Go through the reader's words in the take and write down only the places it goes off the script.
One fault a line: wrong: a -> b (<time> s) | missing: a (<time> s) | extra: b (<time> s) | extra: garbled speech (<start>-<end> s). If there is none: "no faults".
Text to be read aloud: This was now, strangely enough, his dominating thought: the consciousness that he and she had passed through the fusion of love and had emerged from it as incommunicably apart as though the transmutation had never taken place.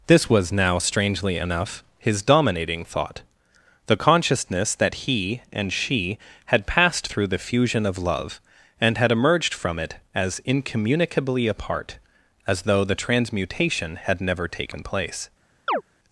no faults